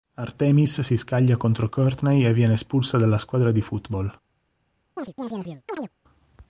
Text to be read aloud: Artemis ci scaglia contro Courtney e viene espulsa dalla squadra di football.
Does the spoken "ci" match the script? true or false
false